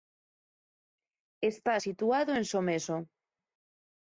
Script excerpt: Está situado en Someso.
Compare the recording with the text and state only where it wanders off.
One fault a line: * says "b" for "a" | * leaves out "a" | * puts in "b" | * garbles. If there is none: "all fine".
all fine